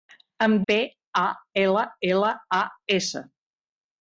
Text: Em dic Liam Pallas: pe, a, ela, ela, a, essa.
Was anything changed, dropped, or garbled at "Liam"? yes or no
yes